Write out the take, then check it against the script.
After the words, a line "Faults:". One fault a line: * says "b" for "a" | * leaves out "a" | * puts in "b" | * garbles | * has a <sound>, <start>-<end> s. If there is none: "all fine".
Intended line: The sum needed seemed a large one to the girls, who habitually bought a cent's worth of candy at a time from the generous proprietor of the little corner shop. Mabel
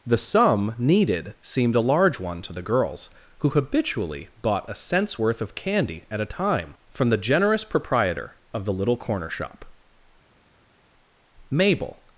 The sum needed seemed a large one to the girls, who habitually bought a cent's worth of candy at a time from the generous proprietor of the little corner shop. Mabel
Faults:
all fine